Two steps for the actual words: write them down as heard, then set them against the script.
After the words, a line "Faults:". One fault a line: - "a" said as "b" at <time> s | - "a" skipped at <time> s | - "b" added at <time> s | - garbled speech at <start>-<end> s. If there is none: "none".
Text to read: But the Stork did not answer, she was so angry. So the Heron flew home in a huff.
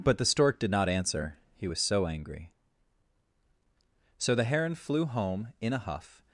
But the Stork did not answer, he was so angry. So the Heron flew home in a huff.
Faults:
- "she" said as "he" at 1.6 s